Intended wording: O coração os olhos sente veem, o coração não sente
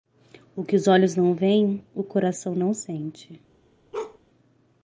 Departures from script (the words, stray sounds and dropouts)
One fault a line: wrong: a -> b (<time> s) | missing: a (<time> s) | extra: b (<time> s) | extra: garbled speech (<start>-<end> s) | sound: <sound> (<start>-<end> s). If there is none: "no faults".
wrong: coração -> que (0.6 s)
wrong: sente -> não (1.1 s)
sound: bark (3.9-4.2 s)